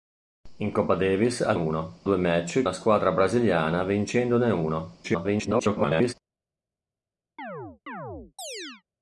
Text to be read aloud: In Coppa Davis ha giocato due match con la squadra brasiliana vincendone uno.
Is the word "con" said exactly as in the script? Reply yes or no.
no